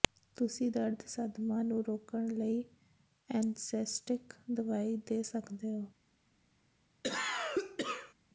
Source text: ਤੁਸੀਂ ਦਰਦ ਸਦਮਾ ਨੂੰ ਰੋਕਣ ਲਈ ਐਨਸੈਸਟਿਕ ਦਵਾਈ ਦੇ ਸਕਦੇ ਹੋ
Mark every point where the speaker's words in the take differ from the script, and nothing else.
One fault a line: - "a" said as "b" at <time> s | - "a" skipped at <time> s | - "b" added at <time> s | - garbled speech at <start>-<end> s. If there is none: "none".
none